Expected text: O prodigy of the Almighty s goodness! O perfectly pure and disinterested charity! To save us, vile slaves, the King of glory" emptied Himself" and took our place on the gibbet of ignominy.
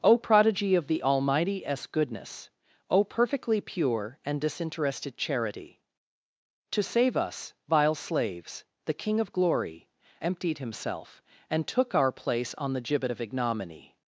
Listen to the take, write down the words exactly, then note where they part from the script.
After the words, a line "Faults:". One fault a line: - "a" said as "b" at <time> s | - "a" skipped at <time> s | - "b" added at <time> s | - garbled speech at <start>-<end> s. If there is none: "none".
O prodigy of the Almighty s goodness! O perfectly pure and disinterested charity! To save us, vile slaves, the King of glory" emptied Himself" and took our place on the gibbet of ignominy.
Faults:
none